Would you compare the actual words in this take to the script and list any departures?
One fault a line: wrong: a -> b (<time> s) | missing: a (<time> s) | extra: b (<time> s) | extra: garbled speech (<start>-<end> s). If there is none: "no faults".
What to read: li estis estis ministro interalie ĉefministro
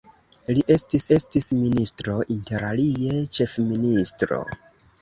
no faults